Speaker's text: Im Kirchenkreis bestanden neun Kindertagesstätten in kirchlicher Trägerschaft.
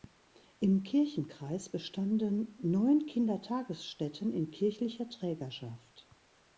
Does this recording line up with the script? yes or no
yes